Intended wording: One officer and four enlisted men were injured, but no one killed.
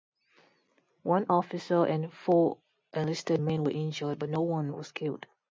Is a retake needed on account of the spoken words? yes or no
yes